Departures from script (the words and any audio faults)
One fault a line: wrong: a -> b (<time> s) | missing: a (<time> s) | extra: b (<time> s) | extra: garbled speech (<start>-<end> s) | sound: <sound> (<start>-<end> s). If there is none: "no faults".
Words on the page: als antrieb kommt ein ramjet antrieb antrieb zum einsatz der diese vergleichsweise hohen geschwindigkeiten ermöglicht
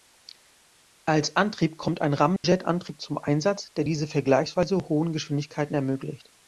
sound: dropout (2.4-2.4 s)
missing: antrieb (3.0 s)